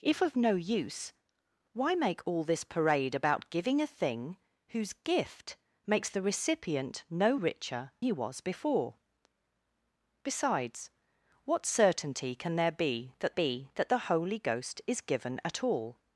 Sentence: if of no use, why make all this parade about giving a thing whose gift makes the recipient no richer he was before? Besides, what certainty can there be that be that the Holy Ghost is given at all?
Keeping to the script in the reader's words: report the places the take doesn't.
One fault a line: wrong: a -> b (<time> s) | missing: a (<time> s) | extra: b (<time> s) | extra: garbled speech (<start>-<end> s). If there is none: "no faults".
no faults